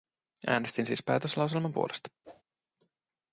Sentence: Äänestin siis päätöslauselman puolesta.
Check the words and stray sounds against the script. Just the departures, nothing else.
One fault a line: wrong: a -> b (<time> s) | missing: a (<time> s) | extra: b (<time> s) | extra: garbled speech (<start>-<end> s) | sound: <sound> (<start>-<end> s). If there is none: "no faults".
sound: whoosh (2.2-2.4 s)